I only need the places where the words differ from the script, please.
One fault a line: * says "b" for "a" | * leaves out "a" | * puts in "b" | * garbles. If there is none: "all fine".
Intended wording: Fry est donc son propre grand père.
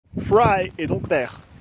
* leaves out "son propre grand"